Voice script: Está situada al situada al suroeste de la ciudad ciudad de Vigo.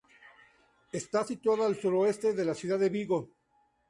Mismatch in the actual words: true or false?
true